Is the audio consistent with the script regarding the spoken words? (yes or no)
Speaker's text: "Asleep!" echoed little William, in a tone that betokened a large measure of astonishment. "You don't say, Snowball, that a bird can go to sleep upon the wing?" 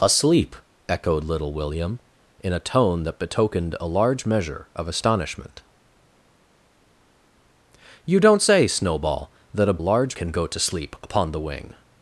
no